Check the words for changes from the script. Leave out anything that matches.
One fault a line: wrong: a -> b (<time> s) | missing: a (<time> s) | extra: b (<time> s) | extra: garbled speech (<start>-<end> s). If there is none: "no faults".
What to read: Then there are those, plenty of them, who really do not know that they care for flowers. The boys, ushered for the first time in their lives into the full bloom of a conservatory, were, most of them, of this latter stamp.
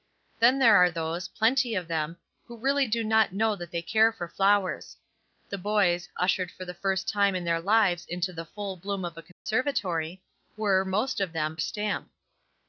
missing: of this latter (11.6 s)